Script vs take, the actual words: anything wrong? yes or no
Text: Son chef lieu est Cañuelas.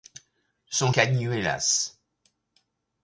yes